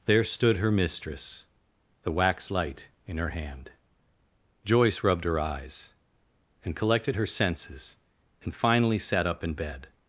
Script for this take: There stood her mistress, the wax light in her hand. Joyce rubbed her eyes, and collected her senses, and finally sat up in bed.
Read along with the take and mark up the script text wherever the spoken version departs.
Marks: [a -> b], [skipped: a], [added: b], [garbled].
There stood her mistress, the wax light in her hand. Joyce rubbed her eyes, and collected her senses, and finally sat up in bed.